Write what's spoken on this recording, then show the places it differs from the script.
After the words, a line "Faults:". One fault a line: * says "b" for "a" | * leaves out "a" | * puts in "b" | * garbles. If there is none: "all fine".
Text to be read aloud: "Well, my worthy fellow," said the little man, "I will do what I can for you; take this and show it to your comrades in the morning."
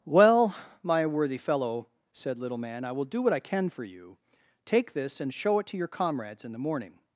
"Well, my worthy fellow," said little man, "I will do what I can for you; take this and show it to your comrades in the morning."
Faults:
* leaves out "the"